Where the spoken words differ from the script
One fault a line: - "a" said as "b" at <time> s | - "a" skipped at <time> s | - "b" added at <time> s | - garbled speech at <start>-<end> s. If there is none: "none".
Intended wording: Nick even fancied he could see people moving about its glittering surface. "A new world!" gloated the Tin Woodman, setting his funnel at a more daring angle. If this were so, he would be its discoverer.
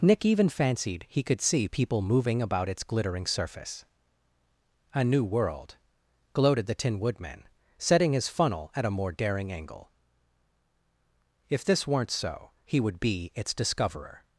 - "were" said as "weren't" at 11.9 s